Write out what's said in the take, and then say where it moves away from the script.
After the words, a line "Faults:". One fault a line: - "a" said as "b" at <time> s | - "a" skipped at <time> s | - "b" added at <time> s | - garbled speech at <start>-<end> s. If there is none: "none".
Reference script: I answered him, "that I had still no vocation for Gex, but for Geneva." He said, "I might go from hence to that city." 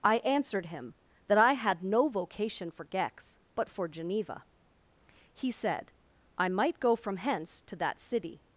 I answered him, "that I had no vocation for Gex, but for Geneva." He said, "I might go from hence to that city."
Faults:
- "still" skipped at 1.8 s